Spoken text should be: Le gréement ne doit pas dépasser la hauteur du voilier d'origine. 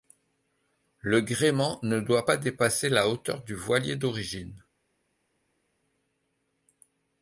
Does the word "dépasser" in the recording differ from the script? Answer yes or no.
no